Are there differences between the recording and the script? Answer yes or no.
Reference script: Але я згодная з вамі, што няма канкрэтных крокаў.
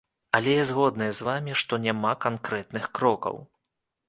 no